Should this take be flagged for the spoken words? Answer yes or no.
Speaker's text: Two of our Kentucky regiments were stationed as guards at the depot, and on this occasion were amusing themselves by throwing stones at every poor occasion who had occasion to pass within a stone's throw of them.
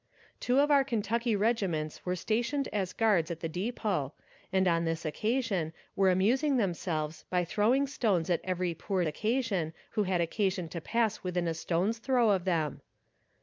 no